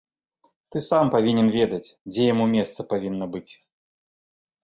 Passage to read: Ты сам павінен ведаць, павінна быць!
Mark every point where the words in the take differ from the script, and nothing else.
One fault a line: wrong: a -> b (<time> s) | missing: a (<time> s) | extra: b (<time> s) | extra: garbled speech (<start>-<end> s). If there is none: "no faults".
extra: дзе яму месца (2.1 s)